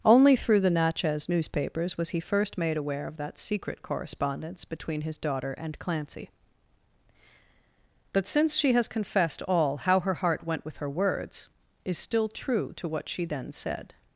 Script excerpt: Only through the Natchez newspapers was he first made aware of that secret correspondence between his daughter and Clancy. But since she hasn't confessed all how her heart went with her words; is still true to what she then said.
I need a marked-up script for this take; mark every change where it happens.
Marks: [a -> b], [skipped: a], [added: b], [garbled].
Only through the Natchez newspapers was he first made aware of that secret correspondence between his daughter and Clancy. But since she [hasn't -> has] confessed all how her heart went with her words; is still true to what she then said.